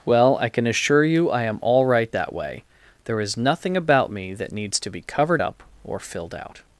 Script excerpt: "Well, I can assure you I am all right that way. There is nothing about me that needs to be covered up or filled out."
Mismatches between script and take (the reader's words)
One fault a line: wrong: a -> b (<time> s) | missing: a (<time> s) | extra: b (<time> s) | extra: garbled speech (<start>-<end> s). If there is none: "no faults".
no faults